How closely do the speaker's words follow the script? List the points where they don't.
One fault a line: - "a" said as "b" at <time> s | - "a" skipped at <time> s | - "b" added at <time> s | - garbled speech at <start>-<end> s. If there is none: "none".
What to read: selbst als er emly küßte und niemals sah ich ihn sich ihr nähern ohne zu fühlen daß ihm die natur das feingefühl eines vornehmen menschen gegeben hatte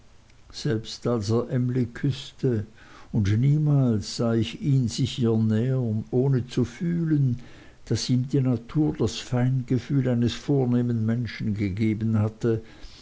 none